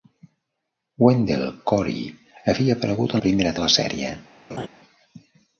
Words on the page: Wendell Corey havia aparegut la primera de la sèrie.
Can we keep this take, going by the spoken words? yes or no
yes